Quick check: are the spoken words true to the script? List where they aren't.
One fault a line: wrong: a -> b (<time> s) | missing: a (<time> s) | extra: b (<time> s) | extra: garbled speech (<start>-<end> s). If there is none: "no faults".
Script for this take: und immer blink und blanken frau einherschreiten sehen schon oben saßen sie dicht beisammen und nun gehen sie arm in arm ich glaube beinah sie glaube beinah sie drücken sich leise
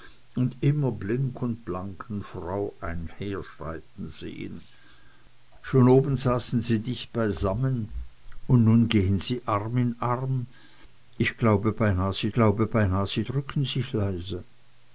no faults